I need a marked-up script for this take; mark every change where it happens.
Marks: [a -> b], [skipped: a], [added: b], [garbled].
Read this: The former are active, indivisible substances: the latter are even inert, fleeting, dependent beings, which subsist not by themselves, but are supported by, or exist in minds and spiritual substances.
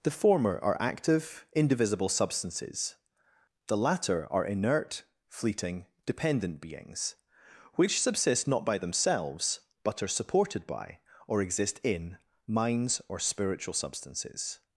The former are active, indivisible substances: the latter are [skipped: even] inert, fleeting, dependent beings, which subsist not by themselves, but are supported by, or exist in minds [and -> or] spiritual substances.